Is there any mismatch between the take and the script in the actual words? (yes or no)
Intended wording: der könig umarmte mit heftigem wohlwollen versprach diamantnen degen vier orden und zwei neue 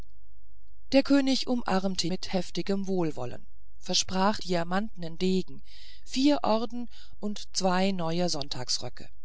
no